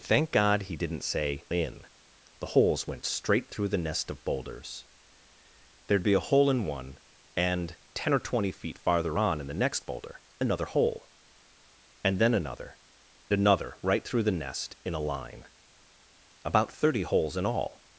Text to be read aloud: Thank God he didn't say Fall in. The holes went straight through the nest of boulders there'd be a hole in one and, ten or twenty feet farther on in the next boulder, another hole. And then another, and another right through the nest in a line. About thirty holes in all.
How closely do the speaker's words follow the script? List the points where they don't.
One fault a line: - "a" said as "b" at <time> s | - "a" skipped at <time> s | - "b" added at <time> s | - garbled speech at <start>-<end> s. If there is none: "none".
- "Fall" skipped at 1.4 s
- "and" skipped at 12.8 s